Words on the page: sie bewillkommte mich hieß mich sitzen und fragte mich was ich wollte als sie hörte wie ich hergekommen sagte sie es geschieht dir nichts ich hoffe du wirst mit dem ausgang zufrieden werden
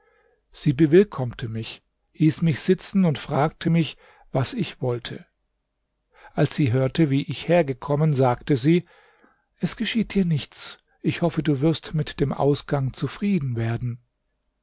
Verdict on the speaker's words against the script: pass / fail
pass